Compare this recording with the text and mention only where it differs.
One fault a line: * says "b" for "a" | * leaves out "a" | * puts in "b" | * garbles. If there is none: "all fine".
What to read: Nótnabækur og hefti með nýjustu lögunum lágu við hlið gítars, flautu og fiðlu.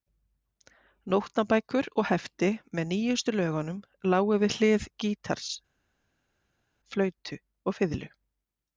all fine